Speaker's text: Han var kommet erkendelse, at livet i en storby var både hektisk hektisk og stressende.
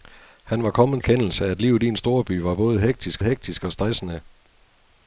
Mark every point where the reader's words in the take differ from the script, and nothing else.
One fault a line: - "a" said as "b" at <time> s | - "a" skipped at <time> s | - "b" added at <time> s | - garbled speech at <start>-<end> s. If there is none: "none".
none